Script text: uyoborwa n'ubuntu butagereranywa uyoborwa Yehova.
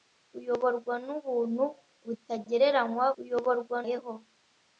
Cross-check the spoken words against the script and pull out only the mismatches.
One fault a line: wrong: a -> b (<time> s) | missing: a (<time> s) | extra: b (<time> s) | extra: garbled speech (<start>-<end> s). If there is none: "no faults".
no faults